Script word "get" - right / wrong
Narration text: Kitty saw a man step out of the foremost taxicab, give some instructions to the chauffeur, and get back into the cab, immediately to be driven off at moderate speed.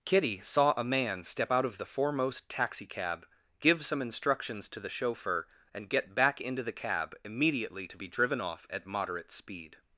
right